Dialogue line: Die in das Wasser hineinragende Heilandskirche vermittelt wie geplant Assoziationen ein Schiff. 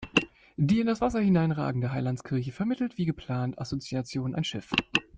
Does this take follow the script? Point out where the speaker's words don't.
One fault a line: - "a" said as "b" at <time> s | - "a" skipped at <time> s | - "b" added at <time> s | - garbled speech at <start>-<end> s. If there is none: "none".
none